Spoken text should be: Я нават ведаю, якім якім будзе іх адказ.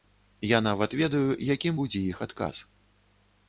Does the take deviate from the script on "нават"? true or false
false